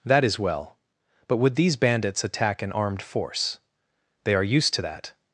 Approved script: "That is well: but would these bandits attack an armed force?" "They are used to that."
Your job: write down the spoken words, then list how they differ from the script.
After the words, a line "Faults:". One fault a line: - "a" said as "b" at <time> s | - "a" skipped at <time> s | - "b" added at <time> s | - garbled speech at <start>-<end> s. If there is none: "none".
"That is well: but would these bandits attack an armed force?" "They are used to that."
Faults:
none